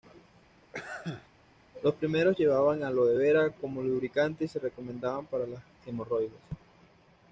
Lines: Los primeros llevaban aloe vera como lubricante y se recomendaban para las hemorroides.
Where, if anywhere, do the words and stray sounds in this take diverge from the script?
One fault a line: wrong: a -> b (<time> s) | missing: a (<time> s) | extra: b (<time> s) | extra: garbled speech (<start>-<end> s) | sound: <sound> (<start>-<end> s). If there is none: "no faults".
sound: sneeze (0.6-1.3 s)